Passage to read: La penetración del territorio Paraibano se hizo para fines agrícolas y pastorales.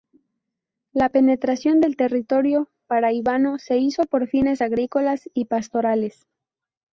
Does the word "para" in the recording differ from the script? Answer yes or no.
yes